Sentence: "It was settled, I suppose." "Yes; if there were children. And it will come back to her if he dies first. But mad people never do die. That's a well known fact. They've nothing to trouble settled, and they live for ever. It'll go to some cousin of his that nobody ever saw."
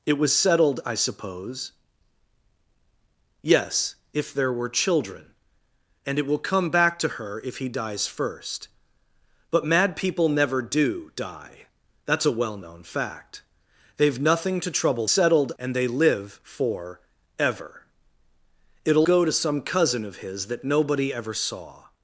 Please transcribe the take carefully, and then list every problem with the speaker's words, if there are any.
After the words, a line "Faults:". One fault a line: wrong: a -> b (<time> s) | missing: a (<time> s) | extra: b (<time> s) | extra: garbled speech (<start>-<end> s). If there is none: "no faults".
"It was settled, I suppose." "Yes; if there were children. And it will come back to her if he dies first. But mad people never do die. That's a well known fact. They've nothing to trouble settled, and they live for ever. It'll go to some cousin of his that nobody ever saw."
Faults:
no faults